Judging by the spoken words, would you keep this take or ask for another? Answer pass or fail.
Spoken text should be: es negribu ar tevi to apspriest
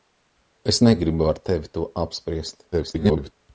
fail